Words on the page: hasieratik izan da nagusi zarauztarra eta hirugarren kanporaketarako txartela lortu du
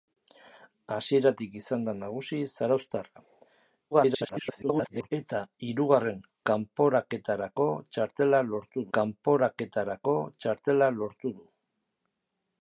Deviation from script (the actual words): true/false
true